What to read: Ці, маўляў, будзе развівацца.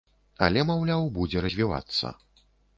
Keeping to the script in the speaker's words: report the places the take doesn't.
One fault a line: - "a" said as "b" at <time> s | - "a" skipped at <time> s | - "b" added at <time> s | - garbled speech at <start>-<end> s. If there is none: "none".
- "Ці" said as "Але" at 0.5 s